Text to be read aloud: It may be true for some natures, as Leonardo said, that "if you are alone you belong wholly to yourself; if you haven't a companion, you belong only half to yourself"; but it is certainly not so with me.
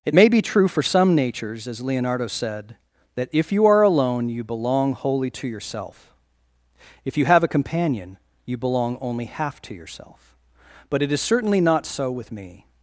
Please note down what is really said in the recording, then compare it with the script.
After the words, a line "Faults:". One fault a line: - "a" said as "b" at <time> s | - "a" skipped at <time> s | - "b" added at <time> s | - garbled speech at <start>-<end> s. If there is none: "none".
It may be true for some natures, as Leonardo said, that "if you are alone you belong wholly to yourself; if you have a companion, you belong only half to yourself"; but it is certainly not so with me.
Faults:
- "haven't" said as "have" at 7.2 s